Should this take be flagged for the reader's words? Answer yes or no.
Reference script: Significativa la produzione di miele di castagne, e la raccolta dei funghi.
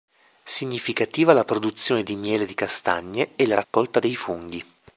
no